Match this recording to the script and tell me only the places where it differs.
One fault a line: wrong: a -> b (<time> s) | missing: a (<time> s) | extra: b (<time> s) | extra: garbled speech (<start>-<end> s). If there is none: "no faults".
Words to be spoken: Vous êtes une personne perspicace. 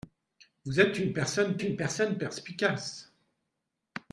extra: une personne (1.6 s)